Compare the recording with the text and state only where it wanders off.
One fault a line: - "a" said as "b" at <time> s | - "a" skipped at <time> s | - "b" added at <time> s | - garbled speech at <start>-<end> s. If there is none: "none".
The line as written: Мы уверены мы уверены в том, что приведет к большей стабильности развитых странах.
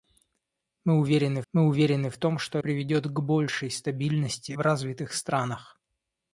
none